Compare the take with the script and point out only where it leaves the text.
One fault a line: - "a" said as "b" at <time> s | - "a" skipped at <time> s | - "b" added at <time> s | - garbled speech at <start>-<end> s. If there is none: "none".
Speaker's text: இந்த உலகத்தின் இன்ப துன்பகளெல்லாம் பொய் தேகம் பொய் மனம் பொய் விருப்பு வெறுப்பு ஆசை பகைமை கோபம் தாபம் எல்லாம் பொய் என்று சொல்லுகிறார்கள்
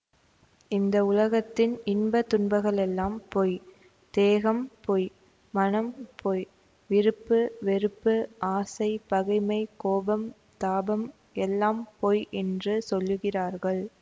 none